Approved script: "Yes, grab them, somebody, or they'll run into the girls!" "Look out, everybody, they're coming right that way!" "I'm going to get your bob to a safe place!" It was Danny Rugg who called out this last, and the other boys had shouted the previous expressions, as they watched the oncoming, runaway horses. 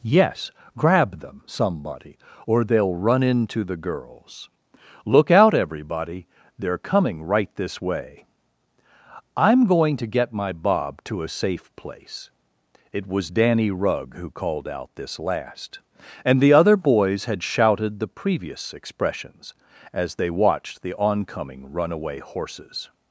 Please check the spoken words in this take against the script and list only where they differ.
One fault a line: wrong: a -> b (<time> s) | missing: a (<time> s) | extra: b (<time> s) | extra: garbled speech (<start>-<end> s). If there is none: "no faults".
wrong: that -> this (7.6 s)
wrong: your -> my (10.3 s)